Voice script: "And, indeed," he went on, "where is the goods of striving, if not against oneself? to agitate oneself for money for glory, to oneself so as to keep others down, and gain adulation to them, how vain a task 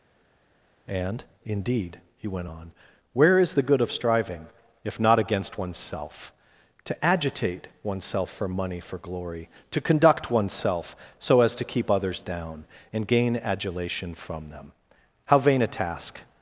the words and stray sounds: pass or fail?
fail